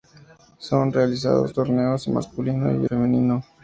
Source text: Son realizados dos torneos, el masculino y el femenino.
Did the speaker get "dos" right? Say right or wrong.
wrong